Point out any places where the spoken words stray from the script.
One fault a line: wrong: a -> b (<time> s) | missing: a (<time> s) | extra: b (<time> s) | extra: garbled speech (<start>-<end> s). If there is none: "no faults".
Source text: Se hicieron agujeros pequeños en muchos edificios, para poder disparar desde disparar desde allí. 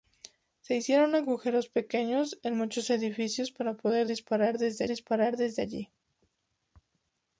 no faults